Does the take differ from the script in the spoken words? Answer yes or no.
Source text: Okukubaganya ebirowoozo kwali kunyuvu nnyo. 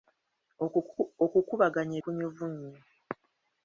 yes